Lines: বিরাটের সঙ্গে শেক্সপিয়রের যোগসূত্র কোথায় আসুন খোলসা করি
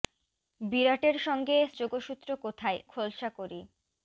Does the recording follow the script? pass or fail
fail